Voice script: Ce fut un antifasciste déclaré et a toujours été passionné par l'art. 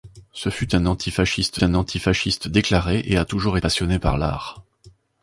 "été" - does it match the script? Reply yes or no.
no